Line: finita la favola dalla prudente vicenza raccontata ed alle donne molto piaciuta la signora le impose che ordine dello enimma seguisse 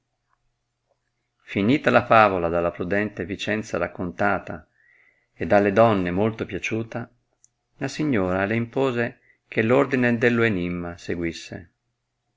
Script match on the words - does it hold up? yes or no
yes